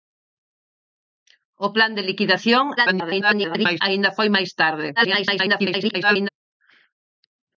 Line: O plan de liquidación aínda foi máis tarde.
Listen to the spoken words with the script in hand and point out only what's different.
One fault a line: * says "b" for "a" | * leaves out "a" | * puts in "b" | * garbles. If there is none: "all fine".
* garbles
* garbles